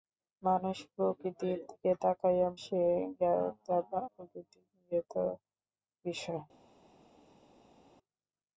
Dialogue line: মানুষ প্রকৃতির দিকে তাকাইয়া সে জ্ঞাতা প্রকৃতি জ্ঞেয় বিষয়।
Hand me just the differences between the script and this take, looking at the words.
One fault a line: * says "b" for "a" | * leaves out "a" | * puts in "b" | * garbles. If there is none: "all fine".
all fine